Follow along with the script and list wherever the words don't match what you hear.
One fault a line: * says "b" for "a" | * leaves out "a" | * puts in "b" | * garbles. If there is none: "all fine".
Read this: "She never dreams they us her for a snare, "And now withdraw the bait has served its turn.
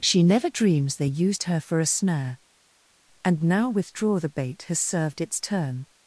* says "used" for "us"